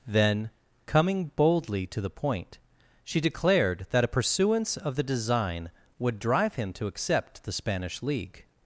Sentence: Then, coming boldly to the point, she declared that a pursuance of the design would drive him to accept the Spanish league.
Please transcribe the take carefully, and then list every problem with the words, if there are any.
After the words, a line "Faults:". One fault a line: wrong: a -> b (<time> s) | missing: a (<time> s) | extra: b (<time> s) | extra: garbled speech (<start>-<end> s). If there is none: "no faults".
Then, coming boldly to the point, she declared that a pursuance of the design would drive him to accept the Spanish league.
Faults:
no faults